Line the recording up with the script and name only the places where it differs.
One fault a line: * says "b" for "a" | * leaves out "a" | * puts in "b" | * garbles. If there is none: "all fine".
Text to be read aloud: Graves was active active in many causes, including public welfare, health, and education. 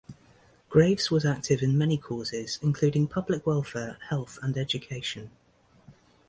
* leaves out "active"